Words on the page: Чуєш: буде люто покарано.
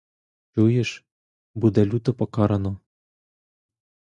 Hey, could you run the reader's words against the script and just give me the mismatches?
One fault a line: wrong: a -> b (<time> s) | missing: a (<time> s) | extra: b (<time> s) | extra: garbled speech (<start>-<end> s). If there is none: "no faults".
no faults